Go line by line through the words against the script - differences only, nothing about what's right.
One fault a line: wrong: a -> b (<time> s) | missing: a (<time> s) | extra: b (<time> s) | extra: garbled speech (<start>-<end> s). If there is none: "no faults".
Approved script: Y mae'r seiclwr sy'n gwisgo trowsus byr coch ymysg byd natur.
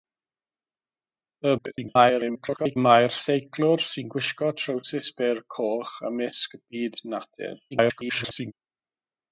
extra: garbled speech (1.6-2.8 s)
extra: garbled speech (7.7-8.5 s)